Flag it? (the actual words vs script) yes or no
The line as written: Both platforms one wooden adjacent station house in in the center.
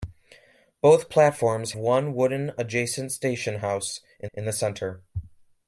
no